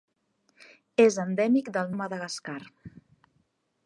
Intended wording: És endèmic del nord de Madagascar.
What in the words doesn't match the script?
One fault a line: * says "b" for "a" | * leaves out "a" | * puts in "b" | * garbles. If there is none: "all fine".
* leaves out "nord"